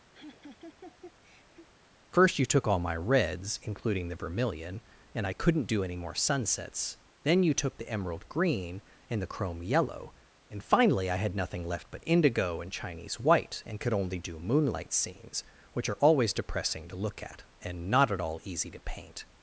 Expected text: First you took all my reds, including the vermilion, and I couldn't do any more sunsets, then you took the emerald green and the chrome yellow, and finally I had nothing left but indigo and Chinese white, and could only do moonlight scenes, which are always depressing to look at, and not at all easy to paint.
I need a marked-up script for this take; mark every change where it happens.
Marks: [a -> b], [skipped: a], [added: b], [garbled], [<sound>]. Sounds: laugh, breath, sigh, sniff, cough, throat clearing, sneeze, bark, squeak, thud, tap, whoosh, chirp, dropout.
[laugh] First you took all my reds, including the vermilion, and I couldn't do any more sunsets, then you took the emerald green and the chrome yellow, and finally I had nothing left but indigo and Chinese white, and could only do moonlight scenes, which are always depressing to look at, and not at all easy to paint.